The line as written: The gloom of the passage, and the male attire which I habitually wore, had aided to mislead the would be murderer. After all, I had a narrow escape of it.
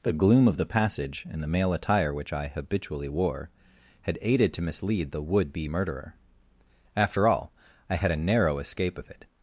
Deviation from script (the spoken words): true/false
false